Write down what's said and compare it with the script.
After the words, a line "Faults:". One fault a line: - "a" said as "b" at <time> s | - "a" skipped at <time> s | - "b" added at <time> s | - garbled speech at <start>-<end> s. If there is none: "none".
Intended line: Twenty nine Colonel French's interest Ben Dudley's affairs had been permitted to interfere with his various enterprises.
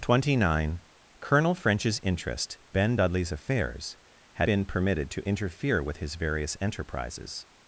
Twenty nine Colonel French's interest Ben Dudley's affairs had been permitted to interfere with his various enterprises.
Faults:
none